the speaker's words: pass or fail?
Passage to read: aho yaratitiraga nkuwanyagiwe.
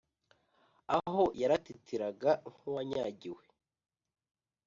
pass